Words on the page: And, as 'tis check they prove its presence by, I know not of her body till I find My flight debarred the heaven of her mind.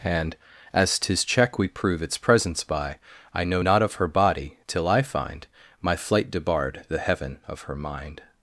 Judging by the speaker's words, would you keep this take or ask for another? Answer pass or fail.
fail